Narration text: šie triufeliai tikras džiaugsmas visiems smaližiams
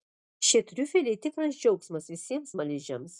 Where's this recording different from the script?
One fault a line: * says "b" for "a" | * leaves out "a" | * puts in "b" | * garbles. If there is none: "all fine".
all fine